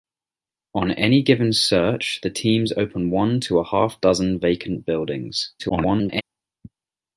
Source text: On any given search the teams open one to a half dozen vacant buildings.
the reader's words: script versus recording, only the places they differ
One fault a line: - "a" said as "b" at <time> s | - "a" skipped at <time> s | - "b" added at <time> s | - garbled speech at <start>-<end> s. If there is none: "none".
- garbled speech at 5.6-6.2 s